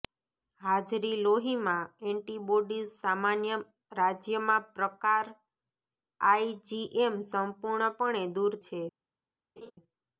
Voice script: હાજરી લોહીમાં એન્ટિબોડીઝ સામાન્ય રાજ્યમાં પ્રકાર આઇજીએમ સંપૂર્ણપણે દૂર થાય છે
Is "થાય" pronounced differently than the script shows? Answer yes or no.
yes